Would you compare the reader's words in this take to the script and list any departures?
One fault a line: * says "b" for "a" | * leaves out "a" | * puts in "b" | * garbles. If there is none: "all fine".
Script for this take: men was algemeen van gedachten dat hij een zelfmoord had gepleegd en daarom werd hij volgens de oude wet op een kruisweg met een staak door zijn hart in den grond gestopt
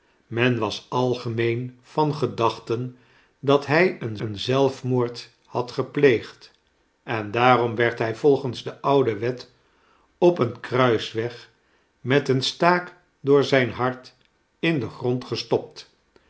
* puts in "een"